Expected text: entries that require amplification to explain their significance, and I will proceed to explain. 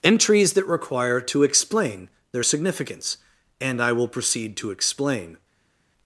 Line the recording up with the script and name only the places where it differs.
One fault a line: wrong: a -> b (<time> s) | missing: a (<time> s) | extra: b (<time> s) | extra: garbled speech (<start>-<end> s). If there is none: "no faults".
missing: amplification (1.2 s)